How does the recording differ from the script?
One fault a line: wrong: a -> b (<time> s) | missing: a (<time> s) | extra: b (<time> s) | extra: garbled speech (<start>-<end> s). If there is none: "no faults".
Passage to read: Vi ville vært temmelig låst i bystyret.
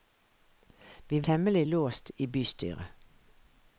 missing: ville vært (1.2 s)